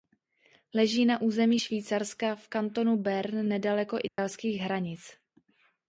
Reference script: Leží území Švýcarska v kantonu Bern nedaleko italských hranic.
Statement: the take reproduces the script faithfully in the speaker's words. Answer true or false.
false